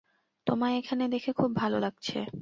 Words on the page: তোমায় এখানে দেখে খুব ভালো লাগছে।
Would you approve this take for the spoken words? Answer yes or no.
yes